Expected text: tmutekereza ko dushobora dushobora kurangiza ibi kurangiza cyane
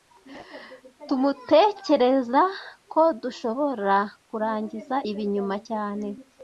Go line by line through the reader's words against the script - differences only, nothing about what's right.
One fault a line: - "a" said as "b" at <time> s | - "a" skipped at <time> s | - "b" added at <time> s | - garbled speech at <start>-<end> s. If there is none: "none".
- "dushobora" skipped at 4.0 s
- "kurangiza" said as "nyuma" at 5.3 s